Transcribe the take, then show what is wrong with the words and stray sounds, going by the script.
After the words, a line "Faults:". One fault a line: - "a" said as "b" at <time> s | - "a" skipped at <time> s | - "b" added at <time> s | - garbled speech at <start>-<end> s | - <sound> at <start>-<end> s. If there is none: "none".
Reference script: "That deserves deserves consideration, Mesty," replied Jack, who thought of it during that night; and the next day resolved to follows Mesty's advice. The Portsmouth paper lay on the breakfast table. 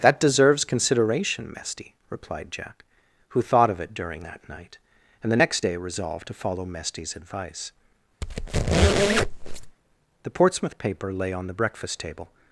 "That deserves consideration, Mesty," replied Jack, who thought of it during that night; and the next day resolved to follow Mesty's advice. The Portsmouth paper lay on the breakfast table.
Faults:
- "deserves" skipped at 0.7 s
- "follows" said as "follow" at 6.3 s
- squeak at 8.2-9.8 s